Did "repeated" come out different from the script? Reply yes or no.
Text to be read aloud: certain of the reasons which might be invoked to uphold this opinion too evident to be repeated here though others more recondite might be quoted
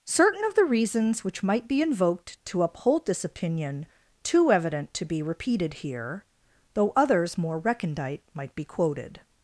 no